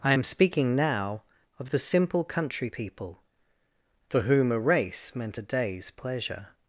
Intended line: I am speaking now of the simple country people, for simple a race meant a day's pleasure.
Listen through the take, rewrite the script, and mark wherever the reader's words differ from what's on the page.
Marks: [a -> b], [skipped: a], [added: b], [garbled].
I am speaking now of the simple country people, for [simple -> whom] a race meant a day's pleasure.